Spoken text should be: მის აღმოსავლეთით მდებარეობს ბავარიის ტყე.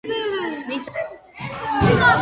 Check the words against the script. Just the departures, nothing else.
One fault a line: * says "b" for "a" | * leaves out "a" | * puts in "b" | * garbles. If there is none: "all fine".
* leaves out "აღმოსავლეთით მდებარეობს ბავარიის"